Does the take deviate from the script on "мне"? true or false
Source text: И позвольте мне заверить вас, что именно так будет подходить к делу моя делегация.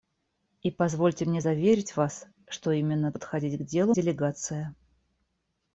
false